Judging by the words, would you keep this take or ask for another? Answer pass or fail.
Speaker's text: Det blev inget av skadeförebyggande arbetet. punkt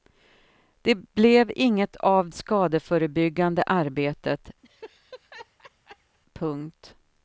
pass